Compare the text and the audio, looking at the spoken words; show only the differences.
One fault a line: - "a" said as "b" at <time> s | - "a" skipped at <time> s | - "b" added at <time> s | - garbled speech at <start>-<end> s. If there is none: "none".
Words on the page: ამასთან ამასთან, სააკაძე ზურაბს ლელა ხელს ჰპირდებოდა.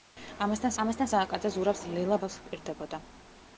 none